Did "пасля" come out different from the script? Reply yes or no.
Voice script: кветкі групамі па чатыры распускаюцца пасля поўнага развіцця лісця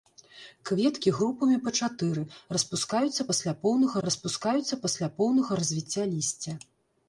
no